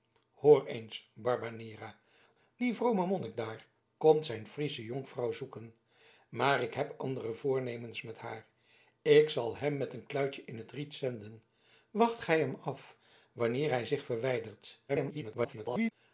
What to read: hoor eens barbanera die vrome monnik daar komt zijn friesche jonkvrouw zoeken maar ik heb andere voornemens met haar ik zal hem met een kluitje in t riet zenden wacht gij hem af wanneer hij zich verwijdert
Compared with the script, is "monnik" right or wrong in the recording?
right